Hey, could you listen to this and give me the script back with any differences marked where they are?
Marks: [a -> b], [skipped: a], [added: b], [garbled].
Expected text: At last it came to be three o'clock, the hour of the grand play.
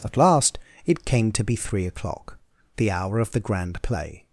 At last it came to be three o'clock, the hour of the grand play.